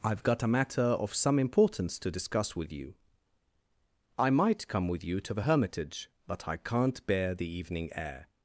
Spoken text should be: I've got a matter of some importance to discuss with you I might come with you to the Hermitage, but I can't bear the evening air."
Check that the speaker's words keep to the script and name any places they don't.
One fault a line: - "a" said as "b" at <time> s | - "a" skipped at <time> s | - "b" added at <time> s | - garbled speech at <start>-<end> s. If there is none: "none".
none